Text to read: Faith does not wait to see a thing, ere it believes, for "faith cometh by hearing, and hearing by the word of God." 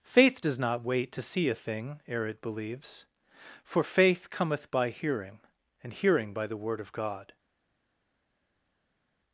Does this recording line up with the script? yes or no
yes